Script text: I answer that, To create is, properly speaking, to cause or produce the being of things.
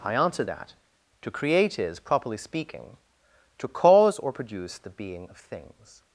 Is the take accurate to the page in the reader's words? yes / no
yes